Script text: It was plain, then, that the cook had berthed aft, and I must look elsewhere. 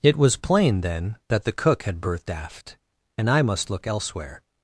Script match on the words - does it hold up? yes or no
yes